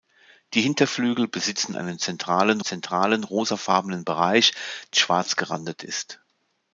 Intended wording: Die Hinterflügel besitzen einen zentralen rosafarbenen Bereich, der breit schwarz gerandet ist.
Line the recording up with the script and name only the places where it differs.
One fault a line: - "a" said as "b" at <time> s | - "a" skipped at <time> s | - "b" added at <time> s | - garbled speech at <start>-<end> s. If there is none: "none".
- "zentralen" added at 2.6 s
- "der breit" skipped at 4.5 s